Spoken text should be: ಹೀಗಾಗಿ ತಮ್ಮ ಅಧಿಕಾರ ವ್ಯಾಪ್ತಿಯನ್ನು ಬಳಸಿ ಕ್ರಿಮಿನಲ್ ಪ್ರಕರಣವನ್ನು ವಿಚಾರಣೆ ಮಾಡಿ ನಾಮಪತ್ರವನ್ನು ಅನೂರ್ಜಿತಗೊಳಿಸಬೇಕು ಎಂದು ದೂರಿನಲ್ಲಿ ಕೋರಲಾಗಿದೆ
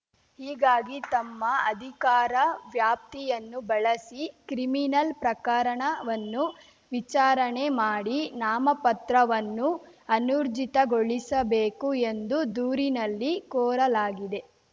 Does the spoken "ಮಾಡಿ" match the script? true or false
true